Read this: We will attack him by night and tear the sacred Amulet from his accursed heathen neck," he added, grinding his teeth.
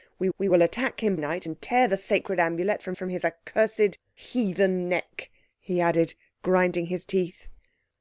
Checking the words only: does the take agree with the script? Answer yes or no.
no